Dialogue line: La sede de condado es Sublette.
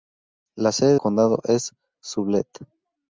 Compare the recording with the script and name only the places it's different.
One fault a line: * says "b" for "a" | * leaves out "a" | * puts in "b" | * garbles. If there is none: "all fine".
* leaves out "de"